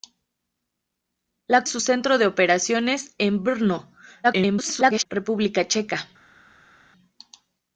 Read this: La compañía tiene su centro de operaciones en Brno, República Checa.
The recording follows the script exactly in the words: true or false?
false